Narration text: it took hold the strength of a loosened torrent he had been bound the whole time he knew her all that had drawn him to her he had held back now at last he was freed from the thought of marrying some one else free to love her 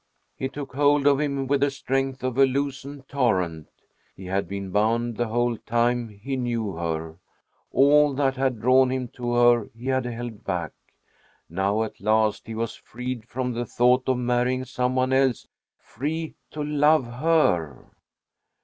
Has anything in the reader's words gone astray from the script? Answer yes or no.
yes